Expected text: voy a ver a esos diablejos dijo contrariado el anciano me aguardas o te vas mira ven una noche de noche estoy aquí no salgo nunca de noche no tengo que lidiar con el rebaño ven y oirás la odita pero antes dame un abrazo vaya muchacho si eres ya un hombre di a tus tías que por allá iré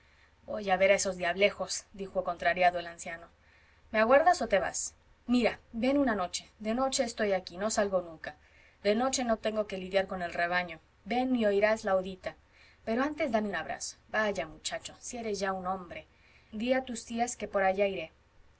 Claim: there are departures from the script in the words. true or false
false